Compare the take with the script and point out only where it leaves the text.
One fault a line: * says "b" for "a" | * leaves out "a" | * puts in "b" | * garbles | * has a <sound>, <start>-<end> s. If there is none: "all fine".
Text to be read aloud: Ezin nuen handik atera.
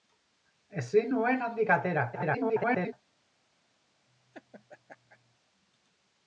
* garbles
* has a laugh, 4.1-5.4 s